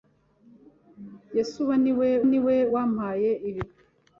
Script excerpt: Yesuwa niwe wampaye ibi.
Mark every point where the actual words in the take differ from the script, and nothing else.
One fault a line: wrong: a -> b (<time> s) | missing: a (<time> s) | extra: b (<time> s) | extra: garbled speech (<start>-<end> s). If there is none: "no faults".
extra: niwe (2.3 s)